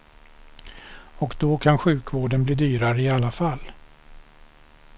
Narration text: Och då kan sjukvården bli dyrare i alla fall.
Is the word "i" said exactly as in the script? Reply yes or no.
yes